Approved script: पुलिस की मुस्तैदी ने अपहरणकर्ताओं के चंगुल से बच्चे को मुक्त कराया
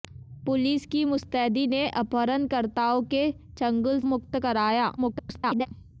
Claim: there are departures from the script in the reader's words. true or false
true